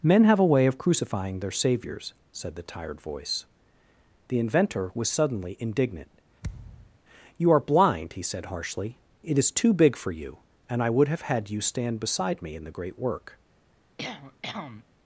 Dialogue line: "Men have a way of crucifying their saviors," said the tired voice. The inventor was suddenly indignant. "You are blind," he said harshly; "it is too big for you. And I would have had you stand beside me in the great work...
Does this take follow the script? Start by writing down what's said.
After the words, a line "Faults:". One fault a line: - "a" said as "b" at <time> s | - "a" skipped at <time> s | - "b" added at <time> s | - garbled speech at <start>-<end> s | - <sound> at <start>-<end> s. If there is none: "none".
"Men have a way of crucifying their saviors," said the tired voice. The inventor was suddenly indignant. "You are blind," he said harshly; "it is too big for you. And I would have had you stand beside me in the great work...
Faults:
- thud at 6.4-7.0 s
- cough at 14.0-14.8 s